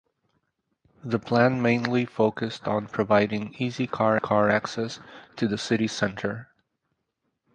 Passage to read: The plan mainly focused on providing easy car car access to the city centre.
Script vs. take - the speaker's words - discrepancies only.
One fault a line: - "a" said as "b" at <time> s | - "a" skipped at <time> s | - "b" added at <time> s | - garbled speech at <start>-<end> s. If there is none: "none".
none